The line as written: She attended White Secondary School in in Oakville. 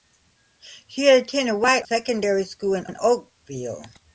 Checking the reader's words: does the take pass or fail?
pass